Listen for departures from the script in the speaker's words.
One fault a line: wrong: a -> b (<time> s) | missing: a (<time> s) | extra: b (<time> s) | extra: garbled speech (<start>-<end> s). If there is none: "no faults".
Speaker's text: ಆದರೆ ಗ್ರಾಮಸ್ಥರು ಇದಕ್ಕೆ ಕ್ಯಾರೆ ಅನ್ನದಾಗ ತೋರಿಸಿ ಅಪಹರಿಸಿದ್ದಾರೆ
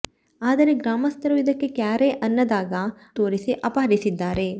no faults